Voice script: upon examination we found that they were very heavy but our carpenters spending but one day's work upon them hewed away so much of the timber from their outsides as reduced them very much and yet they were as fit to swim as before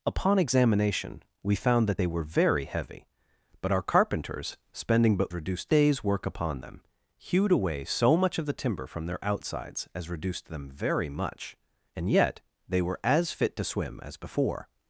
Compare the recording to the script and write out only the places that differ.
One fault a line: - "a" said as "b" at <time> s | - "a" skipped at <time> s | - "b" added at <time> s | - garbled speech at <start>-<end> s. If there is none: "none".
- "one" said as "reduced" at 5.3 s